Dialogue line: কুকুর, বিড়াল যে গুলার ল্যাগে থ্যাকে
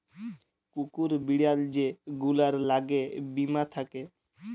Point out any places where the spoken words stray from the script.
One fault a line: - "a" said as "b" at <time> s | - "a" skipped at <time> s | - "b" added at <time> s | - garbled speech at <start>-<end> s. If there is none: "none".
- "বীমা" added at 3.3 s